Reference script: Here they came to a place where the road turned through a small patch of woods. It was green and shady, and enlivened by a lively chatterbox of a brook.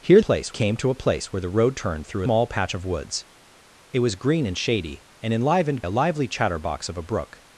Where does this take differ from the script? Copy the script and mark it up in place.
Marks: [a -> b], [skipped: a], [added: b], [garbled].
Here [they -> place] came to a place where the road turned through [skipped: a] small patch of woods. It was green and shady, and enlivened [skipped: by] a lively chatterbox of a brook.